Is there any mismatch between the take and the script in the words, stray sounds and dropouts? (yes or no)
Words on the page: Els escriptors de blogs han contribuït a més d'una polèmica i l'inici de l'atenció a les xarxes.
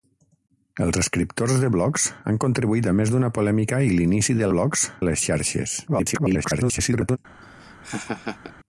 yes